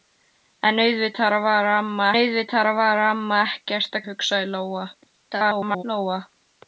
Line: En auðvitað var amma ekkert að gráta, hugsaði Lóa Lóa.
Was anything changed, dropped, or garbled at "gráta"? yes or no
yes